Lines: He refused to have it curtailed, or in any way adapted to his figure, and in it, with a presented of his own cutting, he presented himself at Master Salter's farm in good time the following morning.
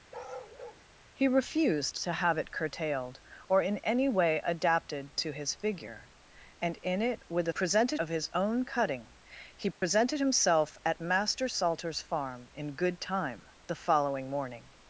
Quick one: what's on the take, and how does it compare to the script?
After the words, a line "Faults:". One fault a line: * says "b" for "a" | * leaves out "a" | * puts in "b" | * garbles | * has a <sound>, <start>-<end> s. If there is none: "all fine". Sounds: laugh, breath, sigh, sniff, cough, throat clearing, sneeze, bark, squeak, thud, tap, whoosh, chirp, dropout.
He refused to have it curtailed, or in any way adapted to his figure, and in it, with a presented of his own cutting, he presented himself at Master Salter's farm in good time the following morning.
Faults:
* has a bark, 0.1-0.8 s
* has a dropout, 9.7-9.8 s